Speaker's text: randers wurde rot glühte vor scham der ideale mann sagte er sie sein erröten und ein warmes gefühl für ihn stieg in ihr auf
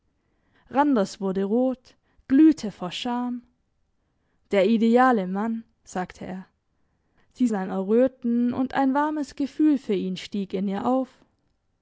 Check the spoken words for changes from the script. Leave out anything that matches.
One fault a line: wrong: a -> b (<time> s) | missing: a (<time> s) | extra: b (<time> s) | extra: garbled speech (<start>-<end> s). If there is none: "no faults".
no faults